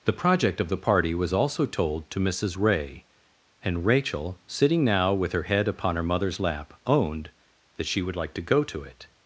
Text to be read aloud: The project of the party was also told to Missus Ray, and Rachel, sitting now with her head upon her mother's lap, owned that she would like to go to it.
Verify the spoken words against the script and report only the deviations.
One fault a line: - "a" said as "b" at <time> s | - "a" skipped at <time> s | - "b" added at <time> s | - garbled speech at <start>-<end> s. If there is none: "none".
none